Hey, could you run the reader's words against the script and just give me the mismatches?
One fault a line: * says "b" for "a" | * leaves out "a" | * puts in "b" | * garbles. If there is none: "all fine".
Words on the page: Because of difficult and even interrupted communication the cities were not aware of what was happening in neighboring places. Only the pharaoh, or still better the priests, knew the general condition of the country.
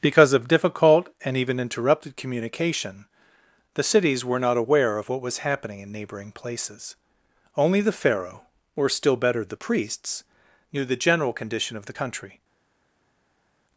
all fine